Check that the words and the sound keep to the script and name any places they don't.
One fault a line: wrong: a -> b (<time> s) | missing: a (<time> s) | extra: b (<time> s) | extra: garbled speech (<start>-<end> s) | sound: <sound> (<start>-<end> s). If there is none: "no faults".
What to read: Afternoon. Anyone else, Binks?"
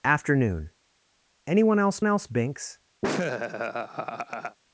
extra: else (2.0 s)
sound: laugh (3.0-4.6 s)